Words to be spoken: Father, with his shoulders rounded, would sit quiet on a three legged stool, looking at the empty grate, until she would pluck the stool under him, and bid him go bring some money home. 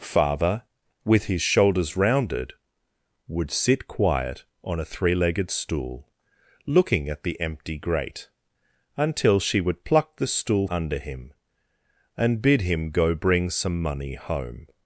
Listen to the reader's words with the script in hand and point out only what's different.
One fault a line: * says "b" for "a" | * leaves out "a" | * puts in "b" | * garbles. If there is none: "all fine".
all fine